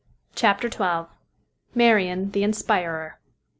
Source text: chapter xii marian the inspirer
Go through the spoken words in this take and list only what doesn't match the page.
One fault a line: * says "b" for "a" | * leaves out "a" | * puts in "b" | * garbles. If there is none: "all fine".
all fine